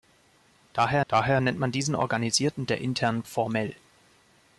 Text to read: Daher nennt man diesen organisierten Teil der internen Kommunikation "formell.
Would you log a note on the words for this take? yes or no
yes